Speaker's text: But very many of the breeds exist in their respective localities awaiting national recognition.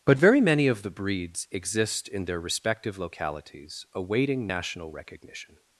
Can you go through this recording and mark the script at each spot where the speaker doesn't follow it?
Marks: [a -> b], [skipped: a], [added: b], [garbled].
But very many of the breeds exist in their respective localities awaiting national recognition.